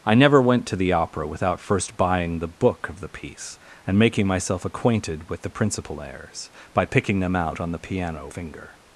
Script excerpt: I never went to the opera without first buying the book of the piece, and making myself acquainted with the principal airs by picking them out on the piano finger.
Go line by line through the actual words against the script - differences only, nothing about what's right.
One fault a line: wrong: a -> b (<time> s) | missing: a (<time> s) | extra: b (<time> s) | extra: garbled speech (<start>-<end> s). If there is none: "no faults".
no faults